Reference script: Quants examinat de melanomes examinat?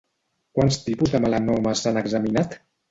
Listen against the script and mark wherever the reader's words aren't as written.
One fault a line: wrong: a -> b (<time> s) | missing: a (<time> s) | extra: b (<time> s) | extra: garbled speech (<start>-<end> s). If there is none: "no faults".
wrong: examinat -> tipus (0.9 s)
extra: s'han (1.9 s)